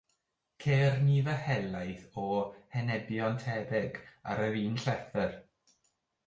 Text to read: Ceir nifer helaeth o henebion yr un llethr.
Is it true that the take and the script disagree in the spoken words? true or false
true